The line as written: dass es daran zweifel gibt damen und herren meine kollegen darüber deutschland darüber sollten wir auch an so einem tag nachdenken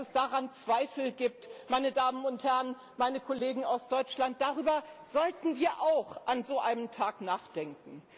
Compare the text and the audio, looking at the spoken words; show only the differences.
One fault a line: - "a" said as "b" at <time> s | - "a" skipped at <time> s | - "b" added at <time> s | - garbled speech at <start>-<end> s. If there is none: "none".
- "meine" added at 1.7 s
- "darüber" said as "aus" at 3.6 s